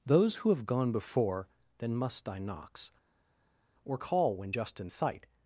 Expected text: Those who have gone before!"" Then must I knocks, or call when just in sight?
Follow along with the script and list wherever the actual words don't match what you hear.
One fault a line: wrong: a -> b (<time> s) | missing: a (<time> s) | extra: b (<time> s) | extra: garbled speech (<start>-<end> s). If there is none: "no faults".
no faults